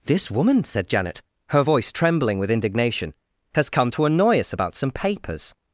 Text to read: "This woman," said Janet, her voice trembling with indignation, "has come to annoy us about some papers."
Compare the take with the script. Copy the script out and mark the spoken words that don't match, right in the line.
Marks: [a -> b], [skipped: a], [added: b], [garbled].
"This woman," said Janet, her voice trembling with indignation, "has come to annoy us about some papers."